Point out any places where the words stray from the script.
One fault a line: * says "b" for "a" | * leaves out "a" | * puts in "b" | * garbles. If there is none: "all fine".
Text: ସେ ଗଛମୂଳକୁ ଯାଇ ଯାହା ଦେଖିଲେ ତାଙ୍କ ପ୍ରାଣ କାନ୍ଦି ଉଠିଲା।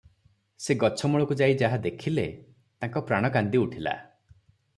all fine